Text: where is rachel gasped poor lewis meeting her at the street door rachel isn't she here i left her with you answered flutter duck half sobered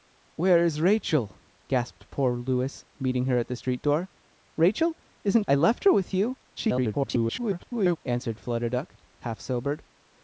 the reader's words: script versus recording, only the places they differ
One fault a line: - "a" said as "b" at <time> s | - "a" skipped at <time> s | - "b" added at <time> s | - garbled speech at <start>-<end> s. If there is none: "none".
- "she here" skipped at 5.4 s
- garbled speech at 6.6-8.0 s